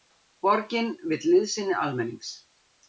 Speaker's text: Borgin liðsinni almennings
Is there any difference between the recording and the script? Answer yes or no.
yes